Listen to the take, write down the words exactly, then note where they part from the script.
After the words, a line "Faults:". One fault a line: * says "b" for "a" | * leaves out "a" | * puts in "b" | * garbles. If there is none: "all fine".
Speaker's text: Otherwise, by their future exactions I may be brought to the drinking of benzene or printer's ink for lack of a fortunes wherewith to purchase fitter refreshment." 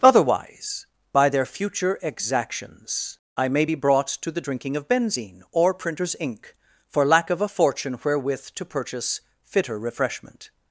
Otherwise, by their future exactions I may be brought to the drinking of benzene or printer's ink for lack of a fortune wherewith to purchase fitter refreshment."
Faults:
* says "fortune" for "fortunes"